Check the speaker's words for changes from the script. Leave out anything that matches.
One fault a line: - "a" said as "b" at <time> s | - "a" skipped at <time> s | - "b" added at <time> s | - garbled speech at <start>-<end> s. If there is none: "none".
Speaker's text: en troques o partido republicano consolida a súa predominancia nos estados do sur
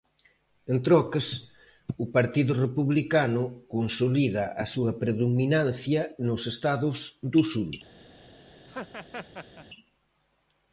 none